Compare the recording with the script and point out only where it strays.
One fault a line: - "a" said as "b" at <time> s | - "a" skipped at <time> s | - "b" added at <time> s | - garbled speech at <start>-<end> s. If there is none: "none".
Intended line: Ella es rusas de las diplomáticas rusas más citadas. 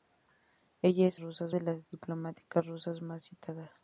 none